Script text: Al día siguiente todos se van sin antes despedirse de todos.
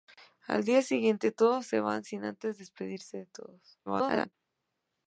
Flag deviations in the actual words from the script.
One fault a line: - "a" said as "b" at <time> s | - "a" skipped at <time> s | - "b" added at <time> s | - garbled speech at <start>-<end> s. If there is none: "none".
- garbled speech at 3.9-4.3 s